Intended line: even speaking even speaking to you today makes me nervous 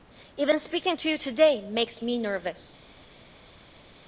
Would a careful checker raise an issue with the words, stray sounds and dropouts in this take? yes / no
yes